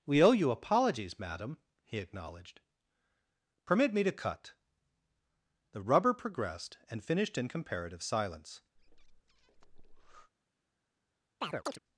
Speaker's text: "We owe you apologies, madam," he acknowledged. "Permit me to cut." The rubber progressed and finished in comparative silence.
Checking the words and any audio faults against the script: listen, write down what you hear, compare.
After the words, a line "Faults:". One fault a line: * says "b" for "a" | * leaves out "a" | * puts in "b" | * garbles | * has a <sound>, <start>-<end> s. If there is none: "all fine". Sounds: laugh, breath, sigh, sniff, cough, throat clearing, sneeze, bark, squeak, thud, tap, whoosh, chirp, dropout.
"We owe you apologies, madam," he acknowledged. "Permit me to cut." The rubber progressed and finished in comparative silence.
Faults:
* has a breath, 8.7-10.3 s
* has a chirp, 11.4-11.8 s